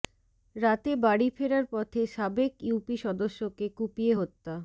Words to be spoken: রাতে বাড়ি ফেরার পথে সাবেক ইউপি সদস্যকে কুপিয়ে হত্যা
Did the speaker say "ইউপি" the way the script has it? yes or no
yes